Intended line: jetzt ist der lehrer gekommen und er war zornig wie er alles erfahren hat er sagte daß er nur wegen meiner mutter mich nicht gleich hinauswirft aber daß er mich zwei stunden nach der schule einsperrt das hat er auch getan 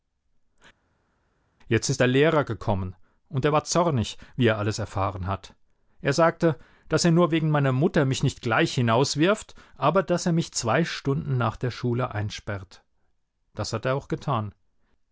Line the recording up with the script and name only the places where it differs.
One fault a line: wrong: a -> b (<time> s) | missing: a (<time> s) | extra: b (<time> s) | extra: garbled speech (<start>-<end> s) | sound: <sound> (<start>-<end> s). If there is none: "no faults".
no faults